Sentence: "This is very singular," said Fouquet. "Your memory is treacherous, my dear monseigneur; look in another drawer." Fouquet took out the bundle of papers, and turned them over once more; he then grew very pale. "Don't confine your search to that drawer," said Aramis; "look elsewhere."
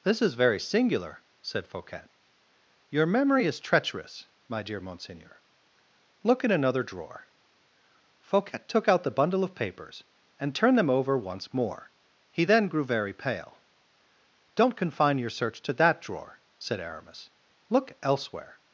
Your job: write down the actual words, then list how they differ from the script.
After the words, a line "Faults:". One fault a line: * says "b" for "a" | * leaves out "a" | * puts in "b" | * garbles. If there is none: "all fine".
"This is very singular," said Fouquet. "Your memory is treacherous, my dear monseigneur; look in another drawer." Fouquet took out the bundle of papers, and turned them over once more; he then grew very pale. "Don't confine your search to that drawer," said Aramis; "look elsewhere."
Faults:
all fine